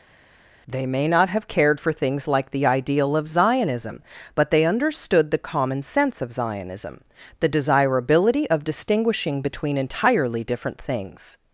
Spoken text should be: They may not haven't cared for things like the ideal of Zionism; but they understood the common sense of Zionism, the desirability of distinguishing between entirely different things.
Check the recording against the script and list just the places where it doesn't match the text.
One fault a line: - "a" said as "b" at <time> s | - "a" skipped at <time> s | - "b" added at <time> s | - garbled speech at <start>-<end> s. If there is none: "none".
- "haven't" said as "have" at 1.3 s